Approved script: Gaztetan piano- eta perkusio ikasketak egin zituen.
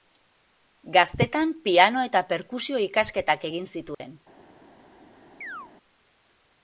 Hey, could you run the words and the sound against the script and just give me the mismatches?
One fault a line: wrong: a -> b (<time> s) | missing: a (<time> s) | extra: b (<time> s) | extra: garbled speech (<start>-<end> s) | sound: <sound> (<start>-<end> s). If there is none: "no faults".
sound: dropout (3.9-4.0 s)
sound: chirp (5.4-5.7 s)